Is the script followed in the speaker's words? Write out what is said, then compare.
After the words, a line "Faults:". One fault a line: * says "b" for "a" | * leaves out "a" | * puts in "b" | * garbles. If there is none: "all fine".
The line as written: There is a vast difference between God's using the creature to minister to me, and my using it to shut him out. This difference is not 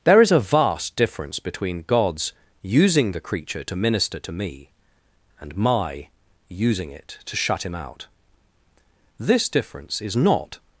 There is a vast difference between God's using the creature to minister to me, and my using it to shut him out. This difference is not
Faults:
all fine